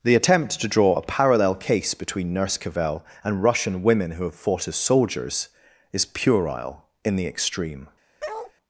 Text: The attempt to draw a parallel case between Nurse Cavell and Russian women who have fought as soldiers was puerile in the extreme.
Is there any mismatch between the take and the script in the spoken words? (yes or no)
yes